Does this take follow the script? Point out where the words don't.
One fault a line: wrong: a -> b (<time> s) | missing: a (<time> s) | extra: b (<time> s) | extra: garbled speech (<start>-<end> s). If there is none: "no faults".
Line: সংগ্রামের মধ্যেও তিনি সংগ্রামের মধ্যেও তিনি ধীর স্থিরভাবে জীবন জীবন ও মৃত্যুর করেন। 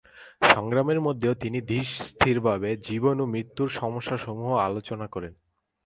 missing: সংগ্রামের মধ্যেও তিনি (1.6 s)
missing: জীবন (3.2 s)
extra: সমস্যাসমূহ আলোচনা (3.7 s)